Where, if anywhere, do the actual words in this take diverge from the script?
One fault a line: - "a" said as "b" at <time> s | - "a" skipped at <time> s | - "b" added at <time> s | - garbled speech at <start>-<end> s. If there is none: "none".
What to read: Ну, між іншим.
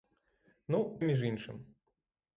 none